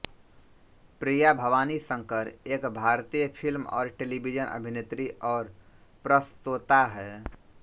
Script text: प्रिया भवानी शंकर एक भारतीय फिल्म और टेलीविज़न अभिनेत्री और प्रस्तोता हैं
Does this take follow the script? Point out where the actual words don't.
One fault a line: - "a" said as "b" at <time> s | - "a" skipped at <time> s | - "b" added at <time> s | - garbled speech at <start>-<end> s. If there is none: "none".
none